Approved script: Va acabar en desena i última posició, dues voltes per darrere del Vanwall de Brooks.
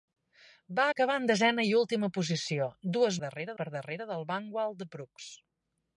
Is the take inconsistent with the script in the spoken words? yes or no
yes